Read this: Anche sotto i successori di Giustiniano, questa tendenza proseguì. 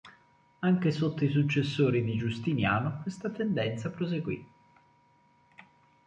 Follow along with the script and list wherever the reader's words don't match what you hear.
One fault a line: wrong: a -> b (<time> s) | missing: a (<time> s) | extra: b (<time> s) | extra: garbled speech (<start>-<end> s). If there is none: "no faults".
no faults